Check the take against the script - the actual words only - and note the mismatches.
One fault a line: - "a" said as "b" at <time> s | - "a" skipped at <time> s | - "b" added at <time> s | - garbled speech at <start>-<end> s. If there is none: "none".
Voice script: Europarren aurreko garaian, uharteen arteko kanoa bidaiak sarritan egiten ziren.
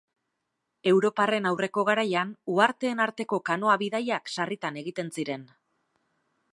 none